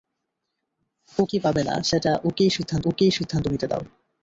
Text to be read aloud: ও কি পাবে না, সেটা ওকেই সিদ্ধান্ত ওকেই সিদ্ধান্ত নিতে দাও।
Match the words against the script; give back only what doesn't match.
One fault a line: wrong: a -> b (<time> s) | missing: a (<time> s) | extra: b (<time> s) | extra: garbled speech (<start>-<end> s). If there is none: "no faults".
no faults